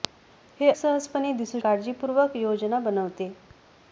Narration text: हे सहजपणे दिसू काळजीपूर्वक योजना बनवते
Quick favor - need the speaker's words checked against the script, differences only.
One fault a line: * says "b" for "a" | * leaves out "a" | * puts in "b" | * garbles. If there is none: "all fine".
all fine